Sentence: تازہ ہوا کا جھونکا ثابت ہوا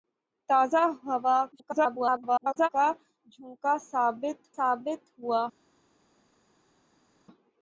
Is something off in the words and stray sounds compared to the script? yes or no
yes